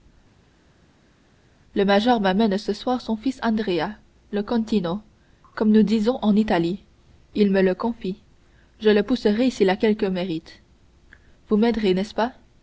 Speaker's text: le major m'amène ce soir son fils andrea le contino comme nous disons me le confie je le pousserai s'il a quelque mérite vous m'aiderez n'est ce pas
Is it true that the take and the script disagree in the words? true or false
true